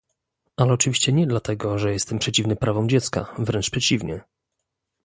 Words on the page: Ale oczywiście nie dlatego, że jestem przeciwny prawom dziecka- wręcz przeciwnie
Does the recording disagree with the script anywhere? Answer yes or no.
no